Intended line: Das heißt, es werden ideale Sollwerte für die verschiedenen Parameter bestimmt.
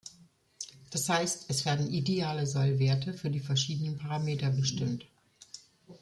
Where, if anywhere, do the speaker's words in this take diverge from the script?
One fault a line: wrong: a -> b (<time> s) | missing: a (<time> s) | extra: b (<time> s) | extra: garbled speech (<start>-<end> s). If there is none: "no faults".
no faults